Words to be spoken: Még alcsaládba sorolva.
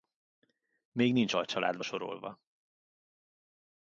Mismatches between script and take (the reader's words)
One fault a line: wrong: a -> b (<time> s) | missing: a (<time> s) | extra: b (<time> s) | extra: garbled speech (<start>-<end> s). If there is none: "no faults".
extra: nincs (1.1 s)